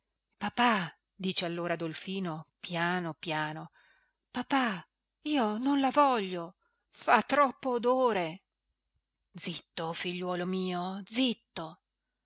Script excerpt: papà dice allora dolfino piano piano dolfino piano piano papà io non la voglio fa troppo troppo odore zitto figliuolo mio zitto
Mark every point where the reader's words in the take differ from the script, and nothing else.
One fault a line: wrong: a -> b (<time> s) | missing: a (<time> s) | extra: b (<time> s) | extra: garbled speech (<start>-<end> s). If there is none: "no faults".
missing: dolfino piano piano (3.7 s)
missing: troppo (7.7 s)